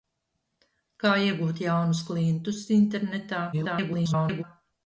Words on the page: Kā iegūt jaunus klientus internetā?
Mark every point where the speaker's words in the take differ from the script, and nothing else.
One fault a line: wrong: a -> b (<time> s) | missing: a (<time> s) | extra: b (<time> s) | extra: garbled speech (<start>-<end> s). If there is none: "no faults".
extra: garbled speech (3.5-4.4 s)